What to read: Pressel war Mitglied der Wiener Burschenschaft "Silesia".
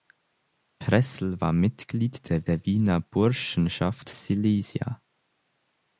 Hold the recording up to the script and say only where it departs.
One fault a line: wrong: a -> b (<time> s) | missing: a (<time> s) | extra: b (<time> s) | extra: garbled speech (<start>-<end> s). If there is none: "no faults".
extra: der (2.5 s)